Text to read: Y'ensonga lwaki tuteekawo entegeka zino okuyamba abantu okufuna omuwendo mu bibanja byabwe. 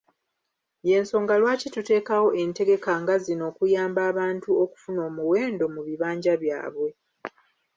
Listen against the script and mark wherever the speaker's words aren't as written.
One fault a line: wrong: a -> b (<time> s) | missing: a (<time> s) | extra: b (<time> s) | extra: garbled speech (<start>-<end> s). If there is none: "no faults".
extra: nga (3.0 s)